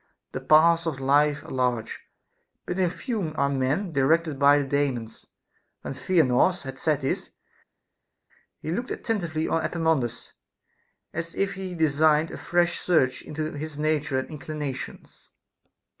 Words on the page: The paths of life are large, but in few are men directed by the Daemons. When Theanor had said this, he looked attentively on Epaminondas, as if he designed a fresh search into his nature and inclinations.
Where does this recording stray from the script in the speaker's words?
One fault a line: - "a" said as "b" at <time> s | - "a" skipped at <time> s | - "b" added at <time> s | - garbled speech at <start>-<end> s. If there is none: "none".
none